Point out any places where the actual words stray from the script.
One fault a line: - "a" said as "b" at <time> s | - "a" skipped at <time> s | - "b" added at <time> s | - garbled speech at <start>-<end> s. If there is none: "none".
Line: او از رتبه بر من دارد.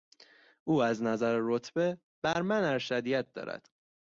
- "نظر" added at 1.0 s
- "ارشدیت" added at 2.6 s